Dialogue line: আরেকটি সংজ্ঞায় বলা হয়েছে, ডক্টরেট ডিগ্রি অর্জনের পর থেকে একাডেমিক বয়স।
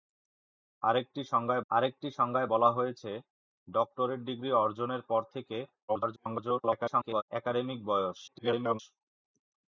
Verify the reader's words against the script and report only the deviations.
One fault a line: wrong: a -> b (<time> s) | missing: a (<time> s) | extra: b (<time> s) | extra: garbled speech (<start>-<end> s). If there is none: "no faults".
extra: আরেকটি সংজ্ঞায় (1.7 s)
extra: garbled speech (5.9-7.2 s)
extra: garbled speech (8.3-8.8 s)